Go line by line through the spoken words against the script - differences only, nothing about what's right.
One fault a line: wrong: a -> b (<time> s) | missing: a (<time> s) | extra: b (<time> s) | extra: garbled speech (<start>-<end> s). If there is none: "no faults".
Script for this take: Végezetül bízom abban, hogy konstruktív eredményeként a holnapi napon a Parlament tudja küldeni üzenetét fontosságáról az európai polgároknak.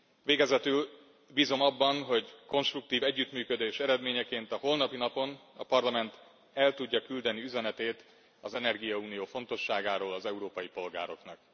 extra: együttműködés (3.0 s)
extra: el (6.5 s)
extra: az energiaunió (8.4 s)